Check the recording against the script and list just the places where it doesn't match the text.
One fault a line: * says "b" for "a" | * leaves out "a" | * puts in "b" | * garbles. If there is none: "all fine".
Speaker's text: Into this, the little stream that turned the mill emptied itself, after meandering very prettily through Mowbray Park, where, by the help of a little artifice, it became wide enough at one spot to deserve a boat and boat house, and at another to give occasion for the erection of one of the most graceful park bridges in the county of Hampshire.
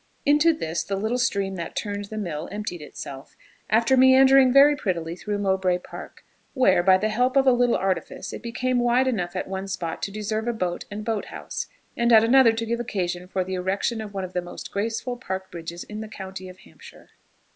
all fine